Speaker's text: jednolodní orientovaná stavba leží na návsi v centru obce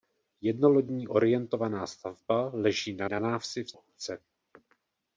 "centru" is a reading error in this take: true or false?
true